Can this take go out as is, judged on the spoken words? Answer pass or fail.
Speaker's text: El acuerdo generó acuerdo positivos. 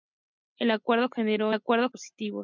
pass